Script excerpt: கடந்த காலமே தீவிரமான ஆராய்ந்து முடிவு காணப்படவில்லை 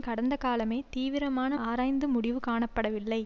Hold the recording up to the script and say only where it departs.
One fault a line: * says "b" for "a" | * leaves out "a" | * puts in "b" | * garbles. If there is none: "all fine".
all fine